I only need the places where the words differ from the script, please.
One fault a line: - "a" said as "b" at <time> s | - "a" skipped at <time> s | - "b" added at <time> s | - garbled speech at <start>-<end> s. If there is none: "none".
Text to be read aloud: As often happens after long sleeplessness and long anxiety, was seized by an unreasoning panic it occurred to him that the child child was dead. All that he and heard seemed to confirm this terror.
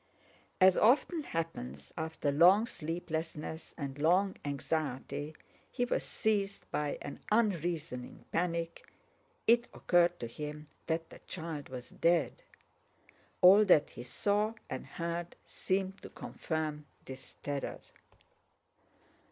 - "he" added at 5.7 s
- "child" skipped at 11.7 s
- "saw" added at 14.0 s